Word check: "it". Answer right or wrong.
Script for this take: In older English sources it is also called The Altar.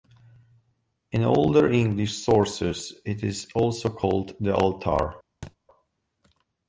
right